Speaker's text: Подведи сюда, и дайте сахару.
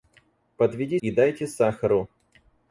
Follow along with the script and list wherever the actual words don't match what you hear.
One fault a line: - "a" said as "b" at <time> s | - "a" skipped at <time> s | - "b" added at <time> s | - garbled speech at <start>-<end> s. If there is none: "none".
- "сюда" skipped at 1.0 s